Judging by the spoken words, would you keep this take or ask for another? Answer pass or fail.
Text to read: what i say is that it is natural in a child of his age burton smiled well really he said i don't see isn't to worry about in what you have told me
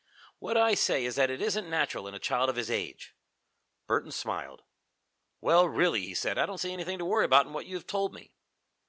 fail